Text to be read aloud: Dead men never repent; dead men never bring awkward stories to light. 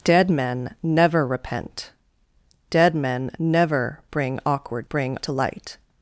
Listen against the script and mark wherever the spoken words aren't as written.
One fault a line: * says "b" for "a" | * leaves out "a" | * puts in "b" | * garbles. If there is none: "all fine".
* says "bring" for "stories"